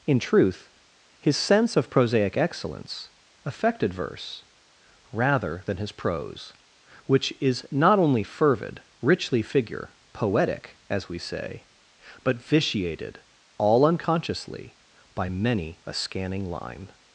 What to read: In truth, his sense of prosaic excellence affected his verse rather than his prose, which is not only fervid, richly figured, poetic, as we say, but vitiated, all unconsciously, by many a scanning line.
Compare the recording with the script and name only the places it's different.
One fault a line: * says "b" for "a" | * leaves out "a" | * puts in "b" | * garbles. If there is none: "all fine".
* leaves out "his"
* says "figure" for "figured"